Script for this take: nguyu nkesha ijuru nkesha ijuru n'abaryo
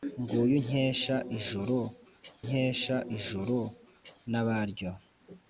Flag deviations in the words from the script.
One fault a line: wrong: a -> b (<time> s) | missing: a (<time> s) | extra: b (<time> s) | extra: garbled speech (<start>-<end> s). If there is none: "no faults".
no faults